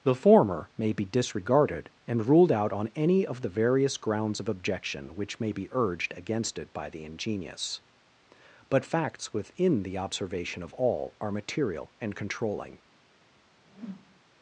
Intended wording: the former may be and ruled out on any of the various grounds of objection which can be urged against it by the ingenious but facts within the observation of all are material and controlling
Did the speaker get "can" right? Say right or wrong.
wrong